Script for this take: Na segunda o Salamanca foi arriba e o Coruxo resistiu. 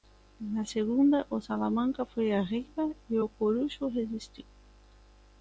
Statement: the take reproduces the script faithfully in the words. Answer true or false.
true